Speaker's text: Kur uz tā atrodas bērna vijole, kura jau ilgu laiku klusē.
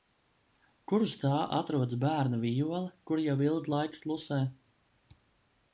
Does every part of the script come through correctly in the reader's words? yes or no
yes